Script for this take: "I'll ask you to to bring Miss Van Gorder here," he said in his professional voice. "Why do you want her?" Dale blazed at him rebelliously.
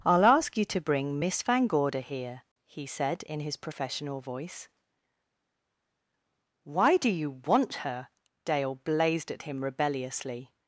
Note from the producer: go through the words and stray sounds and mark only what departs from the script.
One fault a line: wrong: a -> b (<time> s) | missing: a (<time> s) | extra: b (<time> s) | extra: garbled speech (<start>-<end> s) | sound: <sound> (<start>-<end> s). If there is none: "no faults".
missing: to (0.8 s)